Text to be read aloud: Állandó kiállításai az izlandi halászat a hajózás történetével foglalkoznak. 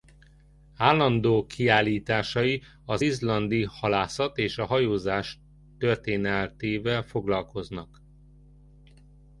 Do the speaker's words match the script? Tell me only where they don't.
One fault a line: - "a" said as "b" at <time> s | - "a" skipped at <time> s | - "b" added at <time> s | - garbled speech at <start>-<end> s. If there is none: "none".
- "és" added at 4.4 s